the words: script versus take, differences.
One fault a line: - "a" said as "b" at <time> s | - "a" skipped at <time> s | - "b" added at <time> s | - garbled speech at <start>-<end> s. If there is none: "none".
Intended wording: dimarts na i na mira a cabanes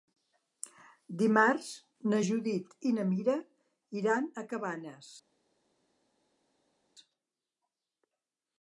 - "judit" added at 2.3 s
- "iran" added at 4.0 s